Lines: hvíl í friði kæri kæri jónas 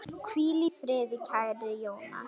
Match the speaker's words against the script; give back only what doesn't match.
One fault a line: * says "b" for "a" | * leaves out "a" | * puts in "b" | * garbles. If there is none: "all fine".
* leaves out "kæri"